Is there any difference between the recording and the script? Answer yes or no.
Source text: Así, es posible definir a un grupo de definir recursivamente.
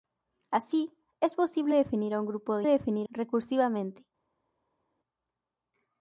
no